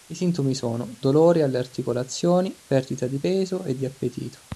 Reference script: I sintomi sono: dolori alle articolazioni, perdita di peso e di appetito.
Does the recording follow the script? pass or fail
pass